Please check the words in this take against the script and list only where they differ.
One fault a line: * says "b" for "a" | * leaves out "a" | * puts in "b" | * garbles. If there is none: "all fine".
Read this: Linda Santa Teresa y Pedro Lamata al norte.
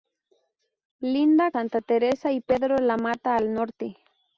all fine